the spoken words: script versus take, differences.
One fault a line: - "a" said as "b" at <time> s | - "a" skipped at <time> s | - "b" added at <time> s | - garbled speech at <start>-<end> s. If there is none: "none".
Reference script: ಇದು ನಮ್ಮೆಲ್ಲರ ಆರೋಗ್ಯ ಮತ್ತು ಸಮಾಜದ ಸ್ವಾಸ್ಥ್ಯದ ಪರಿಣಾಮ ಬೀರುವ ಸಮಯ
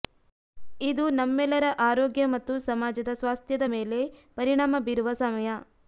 - "ಮೇಲೆ" added at 3.7 s